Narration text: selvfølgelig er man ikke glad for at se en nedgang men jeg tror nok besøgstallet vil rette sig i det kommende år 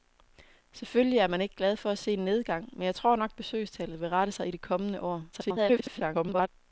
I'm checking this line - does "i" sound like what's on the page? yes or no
yes